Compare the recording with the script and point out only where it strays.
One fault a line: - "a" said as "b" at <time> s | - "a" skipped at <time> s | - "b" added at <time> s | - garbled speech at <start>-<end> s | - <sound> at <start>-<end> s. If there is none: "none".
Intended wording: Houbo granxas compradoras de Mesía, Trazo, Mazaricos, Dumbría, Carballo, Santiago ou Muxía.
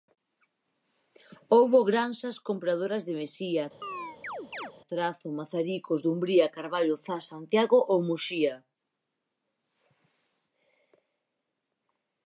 - chirp at 3.8-4.7 s
- "Zas" added at 7.0 s